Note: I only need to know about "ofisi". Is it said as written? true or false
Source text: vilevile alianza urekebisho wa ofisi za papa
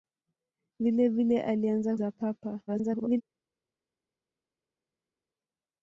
false